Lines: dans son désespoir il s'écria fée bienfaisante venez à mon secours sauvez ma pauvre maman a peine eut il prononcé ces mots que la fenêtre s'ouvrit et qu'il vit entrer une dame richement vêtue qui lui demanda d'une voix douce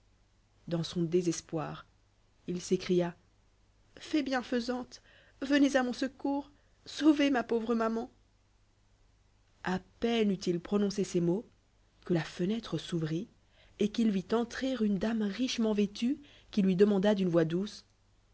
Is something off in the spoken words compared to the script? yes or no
no